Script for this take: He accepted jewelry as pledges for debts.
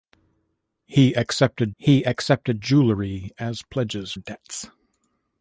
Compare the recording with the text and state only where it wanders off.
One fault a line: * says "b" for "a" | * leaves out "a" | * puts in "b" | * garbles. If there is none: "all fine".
* puts in "he accepted"
* leaves out "for"